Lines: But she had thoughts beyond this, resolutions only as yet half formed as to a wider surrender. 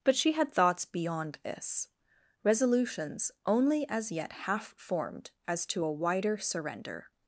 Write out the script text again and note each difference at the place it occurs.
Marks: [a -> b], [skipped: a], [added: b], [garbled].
But she had thoughts beyond this, resolutions only as yet half formed as to a wider surrender.